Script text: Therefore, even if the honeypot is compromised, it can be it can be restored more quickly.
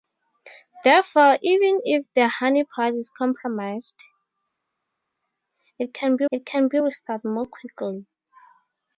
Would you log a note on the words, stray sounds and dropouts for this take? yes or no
no